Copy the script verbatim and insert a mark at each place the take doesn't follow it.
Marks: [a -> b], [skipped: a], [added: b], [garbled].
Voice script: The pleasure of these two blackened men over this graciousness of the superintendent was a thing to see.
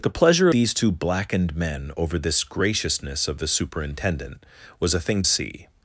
The pleasure [skipped: of] these two blackened men over this graciousness of the superintendent was a thing [skipped: to] see.